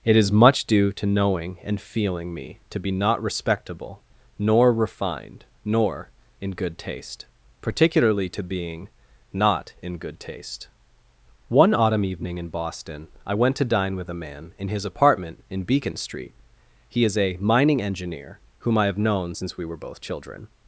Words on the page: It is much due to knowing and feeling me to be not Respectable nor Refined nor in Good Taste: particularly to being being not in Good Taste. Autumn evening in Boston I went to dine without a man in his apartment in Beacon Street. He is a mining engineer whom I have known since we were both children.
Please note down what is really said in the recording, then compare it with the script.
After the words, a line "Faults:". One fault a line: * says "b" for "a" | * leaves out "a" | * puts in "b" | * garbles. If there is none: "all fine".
It is much due to knowing and feeling me to be not Respectable nor Refined nor in Good Taste: particularly to being not in Good Taste. One autumn evening in Boston I went to dine with a man in his apartment in Beacon Street. He is a mining engineer whom I have known since we were both children.
Faults:
* leaves out "being"
* puts in "One"
* says "with" for "without"